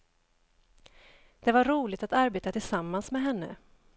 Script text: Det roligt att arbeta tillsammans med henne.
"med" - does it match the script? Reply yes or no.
yes